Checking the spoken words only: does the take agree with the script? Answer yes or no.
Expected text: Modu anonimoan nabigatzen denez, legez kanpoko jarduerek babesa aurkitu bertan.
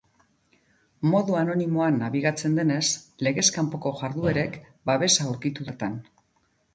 yes